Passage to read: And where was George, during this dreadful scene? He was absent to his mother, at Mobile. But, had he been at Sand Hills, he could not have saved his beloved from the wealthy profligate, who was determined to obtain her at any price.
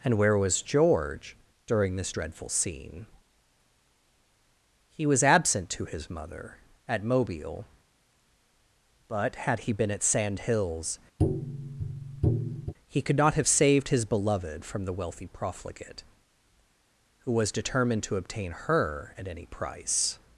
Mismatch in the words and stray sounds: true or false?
true